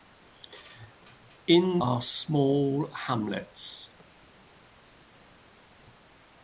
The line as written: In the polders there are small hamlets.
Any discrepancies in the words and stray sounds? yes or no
yes